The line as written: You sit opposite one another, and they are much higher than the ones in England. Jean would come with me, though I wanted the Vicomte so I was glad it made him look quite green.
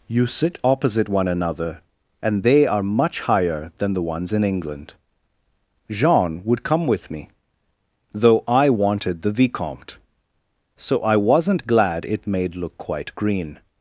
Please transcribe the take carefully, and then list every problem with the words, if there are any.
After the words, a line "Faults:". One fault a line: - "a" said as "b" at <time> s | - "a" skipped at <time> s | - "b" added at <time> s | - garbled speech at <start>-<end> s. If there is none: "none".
You sit opposite one another, and they are much higher than the ones in England. Jean would come with me, though I wanted the Vicomte so I wasn't glad it made look quite green.
Faults:
- "was" said as "wasn't" at 11.2 s
- "him" skipped at 12.5 s